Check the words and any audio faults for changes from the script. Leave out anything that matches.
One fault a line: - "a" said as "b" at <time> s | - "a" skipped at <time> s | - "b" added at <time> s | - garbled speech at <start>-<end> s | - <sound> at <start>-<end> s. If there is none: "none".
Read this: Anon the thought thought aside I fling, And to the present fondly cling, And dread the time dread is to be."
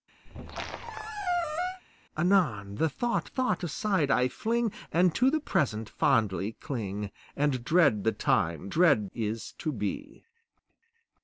- squeak at 0.3-1.8 s